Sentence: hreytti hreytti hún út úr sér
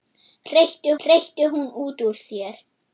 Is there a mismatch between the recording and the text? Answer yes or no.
no